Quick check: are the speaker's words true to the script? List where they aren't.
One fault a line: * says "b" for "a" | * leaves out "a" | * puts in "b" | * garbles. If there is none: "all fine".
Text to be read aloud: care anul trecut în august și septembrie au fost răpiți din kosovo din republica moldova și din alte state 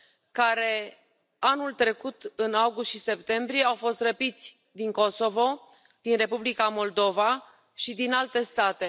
all fine